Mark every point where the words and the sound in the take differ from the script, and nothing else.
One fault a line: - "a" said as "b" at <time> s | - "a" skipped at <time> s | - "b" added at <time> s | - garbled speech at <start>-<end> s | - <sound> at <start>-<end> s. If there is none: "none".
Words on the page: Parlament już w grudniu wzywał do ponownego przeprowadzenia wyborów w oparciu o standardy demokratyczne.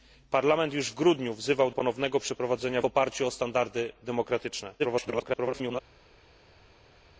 - "do" skipped at 1.7 s
- "wyborów w" skipped at 2.8 s
- garbled speech at 4.8-5.8 s